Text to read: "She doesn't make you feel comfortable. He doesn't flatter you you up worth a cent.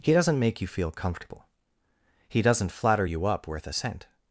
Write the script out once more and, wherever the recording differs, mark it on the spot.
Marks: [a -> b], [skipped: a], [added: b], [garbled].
["She -> He] doesn't make you feel comfortable. He doesn't flatter you [skipped: you] up worth a cent.